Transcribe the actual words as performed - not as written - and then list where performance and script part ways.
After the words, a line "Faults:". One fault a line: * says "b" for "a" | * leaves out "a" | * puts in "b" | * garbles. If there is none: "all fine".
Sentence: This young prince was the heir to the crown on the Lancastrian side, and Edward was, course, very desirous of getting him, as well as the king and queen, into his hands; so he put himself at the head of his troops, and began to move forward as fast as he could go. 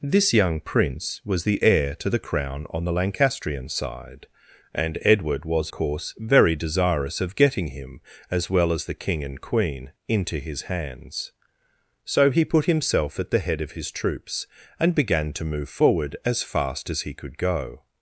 This young prince was the heir to the crown on the Lancastrian side, and Edward was, course, very desirous of getting him, as well as the king and queen, into his hands; so he put himself at the head of his troops, and began to move forward as fast as he could go.
Faults:
all fine